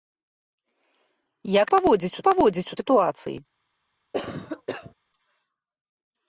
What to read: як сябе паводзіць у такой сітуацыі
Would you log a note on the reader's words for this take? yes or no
yes